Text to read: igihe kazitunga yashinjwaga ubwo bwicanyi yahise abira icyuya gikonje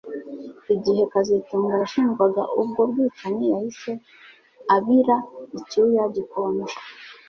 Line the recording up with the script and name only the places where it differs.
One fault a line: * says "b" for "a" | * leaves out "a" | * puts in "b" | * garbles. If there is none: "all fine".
all fine